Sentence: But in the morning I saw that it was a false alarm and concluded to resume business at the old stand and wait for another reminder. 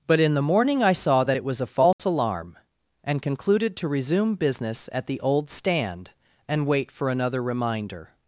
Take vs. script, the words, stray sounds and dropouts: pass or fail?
fail